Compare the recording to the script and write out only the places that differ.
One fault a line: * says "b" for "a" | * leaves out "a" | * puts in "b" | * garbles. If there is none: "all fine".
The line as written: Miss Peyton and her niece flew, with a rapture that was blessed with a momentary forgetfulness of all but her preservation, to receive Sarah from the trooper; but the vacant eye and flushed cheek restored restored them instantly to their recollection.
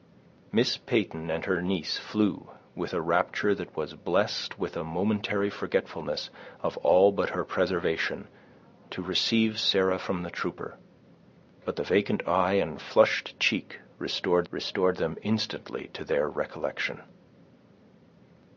all fine